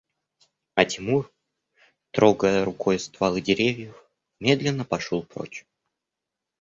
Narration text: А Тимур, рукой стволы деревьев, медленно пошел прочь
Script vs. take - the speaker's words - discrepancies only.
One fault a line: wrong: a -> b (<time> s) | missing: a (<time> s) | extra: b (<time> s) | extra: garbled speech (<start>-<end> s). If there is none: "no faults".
extra: трогая (2.1 s)